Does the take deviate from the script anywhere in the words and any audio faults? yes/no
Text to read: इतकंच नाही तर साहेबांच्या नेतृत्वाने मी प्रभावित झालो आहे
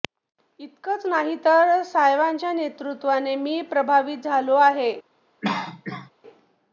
yes